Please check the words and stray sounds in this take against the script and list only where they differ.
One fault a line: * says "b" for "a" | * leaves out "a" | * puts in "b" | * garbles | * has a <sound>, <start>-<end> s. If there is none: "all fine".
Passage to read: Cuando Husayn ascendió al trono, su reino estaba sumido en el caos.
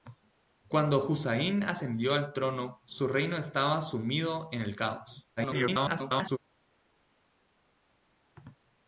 * garbles